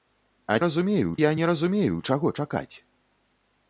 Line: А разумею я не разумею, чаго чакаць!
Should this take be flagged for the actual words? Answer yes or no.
no